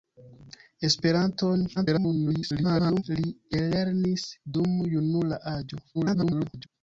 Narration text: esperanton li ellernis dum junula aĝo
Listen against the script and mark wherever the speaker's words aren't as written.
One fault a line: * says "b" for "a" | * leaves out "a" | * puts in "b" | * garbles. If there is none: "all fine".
* garbles
* garbles